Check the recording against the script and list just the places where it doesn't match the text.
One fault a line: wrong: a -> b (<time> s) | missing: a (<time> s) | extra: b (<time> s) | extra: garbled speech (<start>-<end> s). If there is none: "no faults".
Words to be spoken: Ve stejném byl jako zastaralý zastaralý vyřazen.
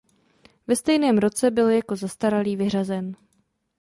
extra: roce (1.2 s)
missing: zastaralý (2.5 s)